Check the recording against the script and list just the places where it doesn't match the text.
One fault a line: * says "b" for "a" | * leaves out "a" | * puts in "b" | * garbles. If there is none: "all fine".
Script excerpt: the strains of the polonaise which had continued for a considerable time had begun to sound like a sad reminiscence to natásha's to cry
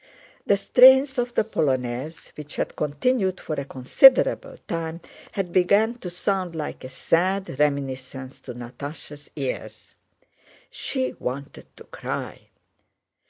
* puts in "ears she wanted"